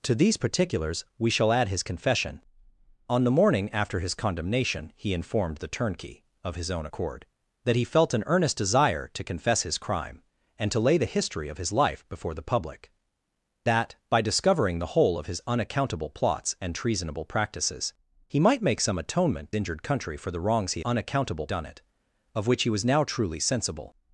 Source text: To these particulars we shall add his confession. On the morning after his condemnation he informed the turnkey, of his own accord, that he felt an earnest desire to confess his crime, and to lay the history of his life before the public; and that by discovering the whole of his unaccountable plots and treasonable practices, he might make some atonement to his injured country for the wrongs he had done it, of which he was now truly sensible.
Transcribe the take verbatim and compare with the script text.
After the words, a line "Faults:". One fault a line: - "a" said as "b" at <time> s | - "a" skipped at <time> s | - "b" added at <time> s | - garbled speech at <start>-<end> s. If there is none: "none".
To these particulars we shall add his confession. On the morning after his condemnation he informed the turnkey, of his own accord, that he felt an earnest desire to confess his crime, and to lay the history of his life before the public; that by discovering the whole of his unaccountable plots and treasonable practices, he might make some atonement injured country for the wrongs he unaccountable done it, of which he was now truly sensible.
Faults:
- "and" skipped at 12.9 s
- "to his" skipped at 19.5 s
- "had" said as "unaccountable" at 20.8 s